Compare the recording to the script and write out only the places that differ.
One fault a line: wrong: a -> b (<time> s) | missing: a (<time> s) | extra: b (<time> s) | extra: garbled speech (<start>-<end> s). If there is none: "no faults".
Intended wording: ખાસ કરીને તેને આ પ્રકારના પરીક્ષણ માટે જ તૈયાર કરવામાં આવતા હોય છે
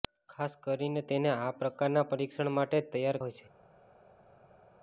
missing: કરવામાં આવતા (3.2 s)